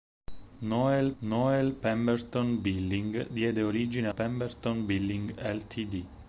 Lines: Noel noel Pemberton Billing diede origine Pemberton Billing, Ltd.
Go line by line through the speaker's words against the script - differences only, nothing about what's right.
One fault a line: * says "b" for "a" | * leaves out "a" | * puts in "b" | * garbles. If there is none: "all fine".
all fine